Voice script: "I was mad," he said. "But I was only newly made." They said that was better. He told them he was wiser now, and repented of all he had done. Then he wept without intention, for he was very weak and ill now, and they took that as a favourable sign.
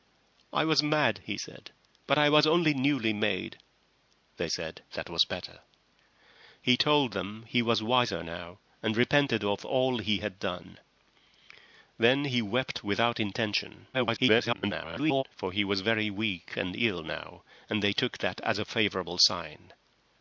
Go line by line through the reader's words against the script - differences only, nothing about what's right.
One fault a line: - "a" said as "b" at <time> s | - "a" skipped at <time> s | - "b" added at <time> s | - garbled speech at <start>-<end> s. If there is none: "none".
- garbled speech at 13.9-15.2 s